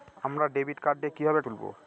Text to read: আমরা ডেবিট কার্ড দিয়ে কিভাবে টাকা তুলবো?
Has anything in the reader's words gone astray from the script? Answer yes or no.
yes